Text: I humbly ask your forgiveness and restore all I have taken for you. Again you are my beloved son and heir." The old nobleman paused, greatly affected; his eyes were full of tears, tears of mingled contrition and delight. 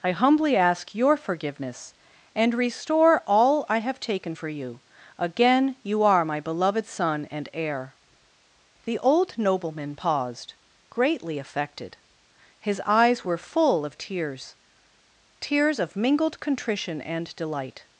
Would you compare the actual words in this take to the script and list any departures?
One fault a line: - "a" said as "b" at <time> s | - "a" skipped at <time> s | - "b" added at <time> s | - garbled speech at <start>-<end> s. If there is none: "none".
none